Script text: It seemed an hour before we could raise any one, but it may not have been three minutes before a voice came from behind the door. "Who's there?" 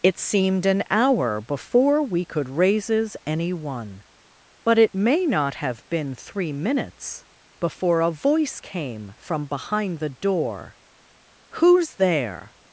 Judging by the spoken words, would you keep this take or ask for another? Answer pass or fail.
fail